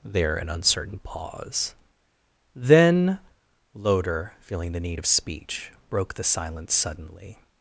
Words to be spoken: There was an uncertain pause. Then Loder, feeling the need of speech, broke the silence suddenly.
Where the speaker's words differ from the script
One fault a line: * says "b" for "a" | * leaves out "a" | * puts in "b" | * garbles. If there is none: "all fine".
* leaves out "was"